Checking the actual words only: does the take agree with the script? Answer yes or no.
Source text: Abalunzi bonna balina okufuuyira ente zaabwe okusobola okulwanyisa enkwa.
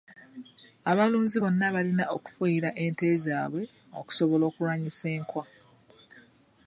yes